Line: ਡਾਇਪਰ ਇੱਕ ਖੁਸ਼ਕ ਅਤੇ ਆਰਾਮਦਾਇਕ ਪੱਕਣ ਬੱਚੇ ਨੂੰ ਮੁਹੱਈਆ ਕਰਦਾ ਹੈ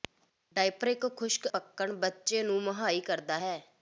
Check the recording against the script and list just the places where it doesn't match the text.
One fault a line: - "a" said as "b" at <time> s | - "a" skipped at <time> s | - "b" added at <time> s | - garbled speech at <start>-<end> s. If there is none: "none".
- "ਅਤੇ ਆਰਾਮਦਾਇਕ" skipped at 1.5 s